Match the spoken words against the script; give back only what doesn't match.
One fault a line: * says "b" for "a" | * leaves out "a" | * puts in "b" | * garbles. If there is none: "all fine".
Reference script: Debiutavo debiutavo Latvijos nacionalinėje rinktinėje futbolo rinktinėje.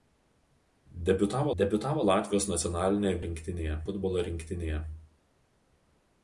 all fine